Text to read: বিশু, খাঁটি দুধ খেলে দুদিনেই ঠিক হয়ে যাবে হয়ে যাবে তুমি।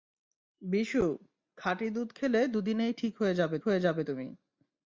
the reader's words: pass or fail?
pass